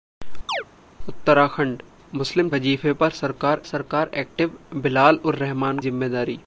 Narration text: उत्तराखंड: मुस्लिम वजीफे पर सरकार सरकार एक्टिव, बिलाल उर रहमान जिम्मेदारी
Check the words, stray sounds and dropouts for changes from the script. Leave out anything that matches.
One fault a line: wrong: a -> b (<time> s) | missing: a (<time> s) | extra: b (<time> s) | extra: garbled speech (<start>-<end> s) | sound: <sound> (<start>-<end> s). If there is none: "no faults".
sound: chirp (0.5-0.6 s)